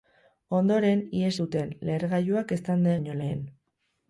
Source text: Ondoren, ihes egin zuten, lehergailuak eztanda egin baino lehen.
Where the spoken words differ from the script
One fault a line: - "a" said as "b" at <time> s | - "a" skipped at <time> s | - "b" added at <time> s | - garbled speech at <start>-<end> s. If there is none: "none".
- "egin" skipped at 1.3 s
- "egin" skipped at 3.0 s